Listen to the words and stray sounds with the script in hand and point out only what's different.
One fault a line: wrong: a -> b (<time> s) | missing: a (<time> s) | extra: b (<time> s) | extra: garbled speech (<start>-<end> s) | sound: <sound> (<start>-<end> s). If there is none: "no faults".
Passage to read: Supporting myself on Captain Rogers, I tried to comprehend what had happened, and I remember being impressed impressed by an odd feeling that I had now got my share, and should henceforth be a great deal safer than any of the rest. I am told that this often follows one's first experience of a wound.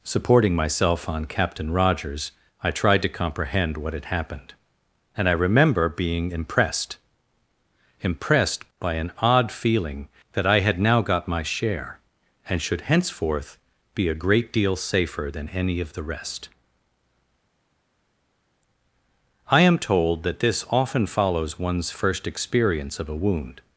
no faults